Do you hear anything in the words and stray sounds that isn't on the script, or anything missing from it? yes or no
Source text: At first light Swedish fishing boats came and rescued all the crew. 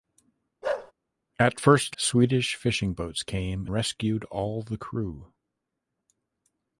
yes